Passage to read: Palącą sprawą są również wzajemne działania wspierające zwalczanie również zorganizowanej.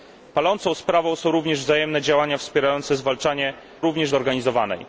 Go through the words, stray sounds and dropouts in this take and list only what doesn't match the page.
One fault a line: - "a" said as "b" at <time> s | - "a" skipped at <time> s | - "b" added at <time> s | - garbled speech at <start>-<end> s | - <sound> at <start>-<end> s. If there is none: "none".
none